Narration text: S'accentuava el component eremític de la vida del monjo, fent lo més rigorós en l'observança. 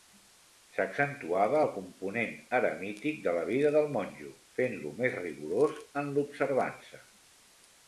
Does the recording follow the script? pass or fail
pass